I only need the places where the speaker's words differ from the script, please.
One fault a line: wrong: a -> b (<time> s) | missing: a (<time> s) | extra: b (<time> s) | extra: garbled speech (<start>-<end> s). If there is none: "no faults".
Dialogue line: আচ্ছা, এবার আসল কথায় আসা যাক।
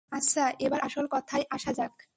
no faults